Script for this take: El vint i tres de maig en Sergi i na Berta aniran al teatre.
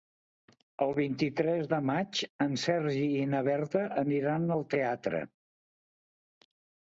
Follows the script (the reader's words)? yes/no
yes